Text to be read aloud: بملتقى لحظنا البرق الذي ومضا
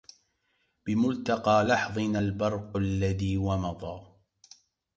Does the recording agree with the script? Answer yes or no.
yes